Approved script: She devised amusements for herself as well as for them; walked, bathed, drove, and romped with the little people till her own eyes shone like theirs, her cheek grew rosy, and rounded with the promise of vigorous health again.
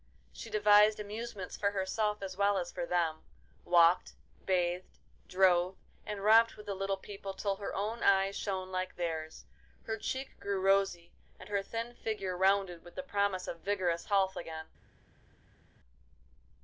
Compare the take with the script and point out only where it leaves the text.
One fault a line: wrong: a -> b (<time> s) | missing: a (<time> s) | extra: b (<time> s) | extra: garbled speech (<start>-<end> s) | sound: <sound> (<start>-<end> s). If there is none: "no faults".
extra: her thin figure (11.5 s)